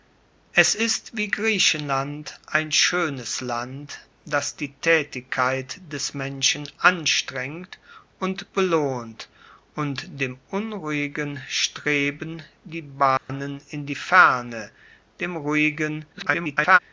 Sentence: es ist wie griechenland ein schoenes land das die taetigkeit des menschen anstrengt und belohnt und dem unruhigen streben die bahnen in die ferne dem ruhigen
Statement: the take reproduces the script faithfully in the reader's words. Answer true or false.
false